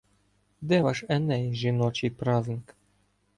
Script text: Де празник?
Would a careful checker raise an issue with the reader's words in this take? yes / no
yes